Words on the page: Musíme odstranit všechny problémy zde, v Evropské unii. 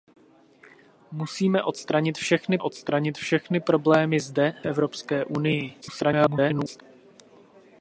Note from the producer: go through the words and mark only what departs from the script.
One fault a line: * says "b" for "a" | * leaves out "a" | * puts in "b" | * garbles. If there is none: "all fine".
* puts in "odstranit všechny"
* leaves out "v"
* garbles